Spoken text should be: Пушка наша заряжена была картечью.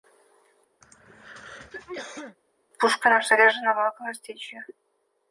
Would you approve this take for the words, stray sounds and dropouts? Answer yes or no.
no